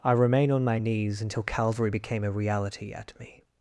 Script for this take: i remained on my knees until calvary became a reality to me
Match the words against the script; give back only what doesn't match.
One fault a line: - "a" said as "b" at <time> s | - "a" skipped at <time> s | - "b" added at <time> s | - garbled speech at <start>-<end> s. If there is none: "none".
- "remained" said as "remain" at 0.1 s
- "to" said as "at" at 2.9 s